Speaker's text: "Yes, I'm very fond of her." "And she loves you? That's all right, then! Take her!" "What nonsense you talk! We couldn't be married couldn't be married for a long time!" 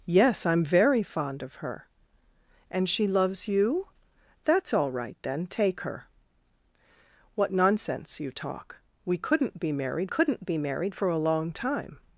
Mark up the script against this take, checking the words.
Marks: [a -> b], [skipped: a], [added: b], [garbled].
"Yes, I'm very fond of her." "And she loves you? That's all right, then! Take her!" "What nonsense you talk! We couldn't be married couldn't be married for a long time!"